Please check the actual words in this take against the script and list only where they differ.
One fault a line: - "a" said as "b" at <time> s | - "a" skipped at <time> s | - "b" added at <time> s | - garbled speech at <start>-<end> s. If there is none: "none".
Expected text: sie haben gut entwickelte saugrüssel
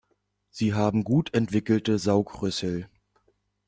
none